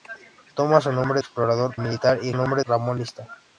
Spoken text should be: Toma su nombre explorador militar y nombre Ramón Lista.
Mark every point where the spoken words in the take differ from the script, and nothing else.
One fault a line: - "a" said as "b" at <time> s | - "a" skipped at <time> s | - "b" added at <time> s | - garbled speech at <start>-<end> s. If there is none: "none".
none